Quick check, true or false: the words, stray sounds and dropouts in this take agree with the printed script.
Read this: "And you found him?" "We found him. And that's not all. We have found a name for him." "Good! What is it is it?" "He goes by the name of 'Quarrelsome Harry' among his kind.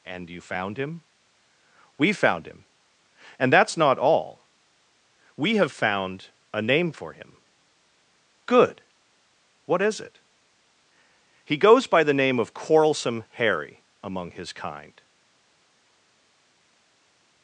false